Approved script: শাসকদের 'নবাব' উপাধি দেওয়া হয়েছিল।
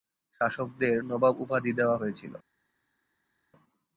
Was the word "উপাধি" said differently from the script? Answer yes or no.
no